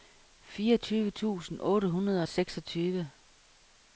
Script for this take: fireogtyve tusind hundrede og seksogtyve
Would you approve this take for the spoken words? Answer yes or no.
no